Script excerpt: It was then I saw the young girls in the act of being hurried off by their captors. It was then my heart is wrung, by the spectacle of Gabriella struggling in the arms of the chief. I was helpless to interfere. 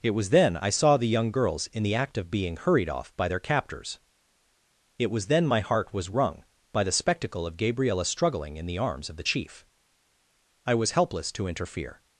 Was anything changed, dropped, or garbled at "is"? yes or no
yes